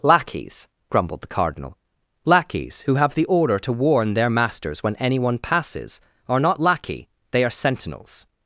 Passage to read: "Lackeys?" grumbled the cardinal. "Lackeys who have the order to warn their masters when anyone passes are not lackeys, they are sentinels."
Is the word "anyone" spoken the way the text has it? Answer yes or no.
yes